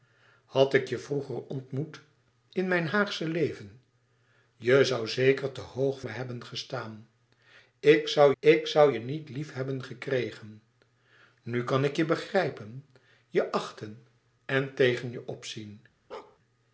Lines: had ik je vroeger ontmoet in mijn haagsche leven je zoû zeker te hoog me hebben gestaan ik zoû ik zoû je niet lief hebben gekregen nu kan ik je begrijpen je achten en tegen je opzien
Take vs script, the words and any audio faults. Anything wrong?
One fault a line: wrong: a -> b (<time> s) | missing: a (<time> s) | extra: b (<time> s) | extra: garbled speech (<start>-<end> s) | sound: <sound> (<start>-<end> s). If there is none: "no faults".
sound: bark (16.1-16.4 s)